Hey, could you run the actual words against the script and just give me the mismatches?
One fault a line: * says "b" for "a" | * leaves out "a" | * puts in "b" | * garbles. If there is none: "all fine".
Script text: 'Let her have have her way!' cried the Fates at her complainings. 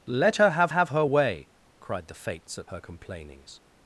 all fine